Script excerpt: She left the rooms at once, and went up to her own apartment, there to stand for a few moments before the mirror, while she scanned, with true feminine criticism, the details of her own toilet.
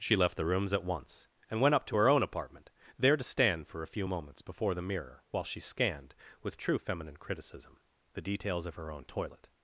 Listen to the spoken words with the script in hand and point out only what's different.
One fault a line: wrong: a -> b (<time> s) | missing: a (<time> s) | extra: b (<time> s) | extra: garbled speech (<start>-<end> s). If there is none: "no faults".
no faults